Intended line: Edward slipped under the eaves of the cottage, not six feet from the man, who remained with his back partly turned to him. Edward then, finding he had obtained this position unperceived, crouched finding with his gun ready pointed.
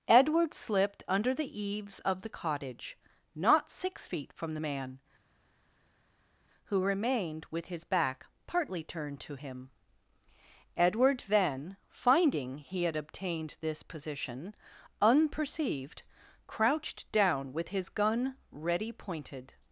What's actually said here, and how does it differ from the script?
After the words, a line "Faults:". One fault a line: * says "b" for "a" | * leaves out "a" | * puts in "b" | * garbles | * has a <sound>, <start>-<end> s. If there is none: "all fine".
Edward slipped under the eaves of the cottage, not six feet from the man, who remained with his back partly turned to him. Edward then, finding he had obtained this position unperceived, crouched down with his gun ready pointed.
Faults:
* says "down" for "finding"